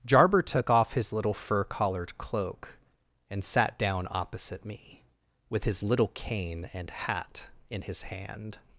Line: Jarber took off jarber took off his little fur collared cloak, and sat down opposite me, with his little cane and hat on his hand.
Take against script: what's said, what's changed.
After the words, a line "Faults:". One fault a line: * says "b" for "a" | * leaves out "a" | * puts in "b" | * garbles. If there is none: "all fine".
Jarber took off his little fur collared cloak, and sat down opposite me, with his little cane and hat in his hand.
Faults:
* leaves out "jarber took off"
* says "in" for "on"